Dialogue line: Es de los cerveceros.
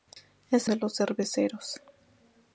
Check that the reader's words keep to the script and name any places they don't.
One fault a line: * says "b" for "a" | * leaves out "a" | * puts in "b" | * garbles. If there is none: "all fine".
all fine